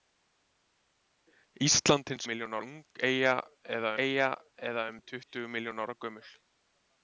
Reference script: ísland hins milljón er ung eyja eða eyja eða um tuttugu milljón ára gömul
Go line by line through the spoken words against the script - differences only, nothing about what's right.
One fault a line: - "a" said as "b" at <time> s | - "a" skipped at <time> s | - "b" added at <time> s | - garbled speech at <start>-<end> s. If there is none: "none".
none